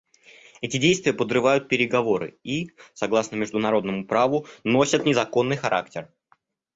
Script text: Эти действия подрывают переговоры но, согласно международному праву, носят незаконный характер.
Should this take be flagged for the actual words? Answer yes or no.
yes